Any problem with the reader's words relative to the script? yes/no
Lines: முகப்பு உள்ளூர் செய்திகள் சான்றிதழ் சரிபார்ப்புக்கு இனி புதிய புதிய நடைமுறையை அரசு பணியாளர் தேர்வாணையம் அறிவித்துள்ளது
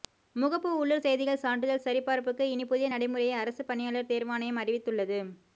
yes